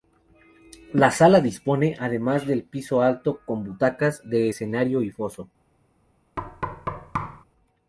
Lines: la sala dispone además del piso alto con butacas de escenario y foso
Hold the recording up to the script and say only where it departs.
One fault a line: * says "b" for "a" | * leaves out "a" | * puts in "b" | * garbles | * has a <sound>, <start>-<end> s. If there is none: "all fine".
* has a thud, 6.4-7.4 s